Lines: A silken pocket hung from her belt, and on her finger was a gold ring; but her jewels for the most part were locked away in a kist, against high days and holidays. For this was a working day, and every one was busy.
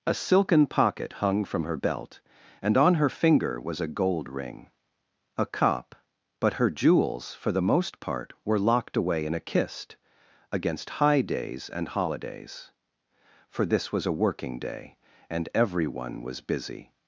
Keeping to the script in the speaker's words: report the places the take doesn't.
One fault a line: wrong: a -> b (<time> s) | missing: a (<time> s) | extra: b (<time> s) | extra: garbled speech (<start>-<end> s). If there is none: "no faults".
extra: a cup (5.4 s)